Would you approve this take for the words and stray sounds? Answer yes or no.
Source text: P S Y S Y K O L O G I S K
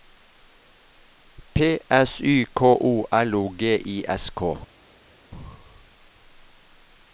no